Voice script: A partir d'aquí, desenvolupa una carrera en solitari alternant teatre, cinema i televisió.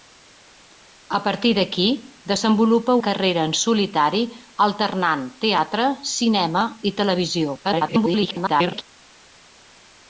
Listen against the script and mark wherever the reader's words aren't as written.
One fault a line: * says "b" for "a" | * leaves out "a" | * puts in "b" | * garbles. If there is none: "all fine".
* leaves out "una"
* garbles